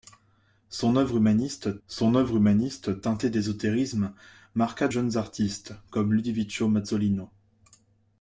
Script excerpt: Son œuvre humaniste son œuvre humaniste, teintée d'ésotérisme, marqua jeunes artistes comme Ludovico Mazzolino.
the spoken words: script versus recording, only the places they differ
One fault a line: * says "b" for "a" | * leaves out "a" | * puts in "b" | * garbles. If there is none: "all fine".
all fine